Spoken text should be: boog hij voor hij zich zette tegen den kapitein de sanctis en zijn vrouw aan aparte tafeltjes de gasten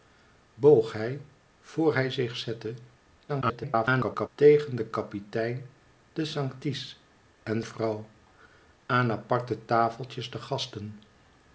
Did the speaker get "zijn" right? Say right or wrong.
wrong